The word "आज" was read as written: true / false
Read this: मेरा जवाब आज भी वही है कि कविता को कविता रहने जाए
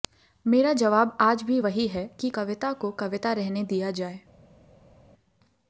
true